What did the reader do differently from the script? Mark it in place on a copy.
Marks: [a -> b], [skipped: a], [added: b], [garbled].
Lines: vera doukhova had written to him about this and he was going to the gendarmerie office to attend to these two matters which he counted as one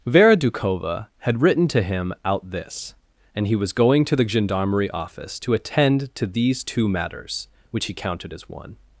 vera doukhova had written to him [about -> out] this and he was going to the gendarmerie office to attend to these two matters which he counted as one